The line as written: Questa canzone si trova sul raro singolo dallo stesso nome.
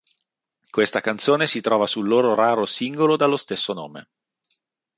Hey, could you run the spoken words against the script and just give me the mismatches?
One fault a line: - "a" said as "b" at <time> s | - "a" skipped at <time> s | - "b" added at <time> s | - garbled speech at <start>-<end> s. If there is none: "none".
- "loro" added at 2.1 s